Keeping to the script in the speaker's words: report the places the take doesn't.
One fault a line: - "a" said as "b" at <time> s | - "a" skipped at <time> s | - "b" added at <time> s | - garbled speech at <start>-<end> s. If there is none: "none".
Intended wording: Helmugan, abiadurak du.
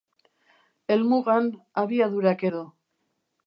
none